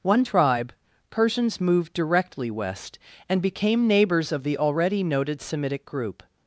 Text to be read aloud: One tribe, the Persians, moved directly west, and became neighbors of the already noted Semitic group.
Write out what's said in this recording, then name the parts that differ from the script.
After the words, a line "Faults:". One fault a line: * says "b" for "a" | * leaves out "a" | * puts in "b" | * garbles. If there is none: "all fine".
One tribe, Persians, moved directly west, and became neighbors of the already noted Semitic group.
Faults:
* leaves out "the"